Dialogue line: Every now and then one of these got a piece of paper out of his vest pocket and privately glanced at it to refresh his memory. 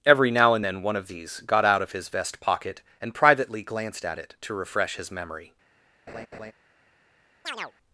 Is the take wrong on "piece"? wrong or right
wrong